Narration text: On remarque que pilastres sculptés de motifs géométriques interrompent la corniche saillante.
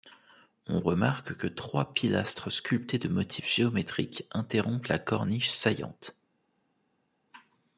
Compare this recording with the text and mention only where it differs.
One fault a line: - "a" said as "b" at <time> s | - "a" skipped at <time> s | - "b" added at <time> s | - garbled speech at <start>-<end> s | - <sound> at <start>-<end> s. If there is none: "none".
- "trois" added at 1.4 s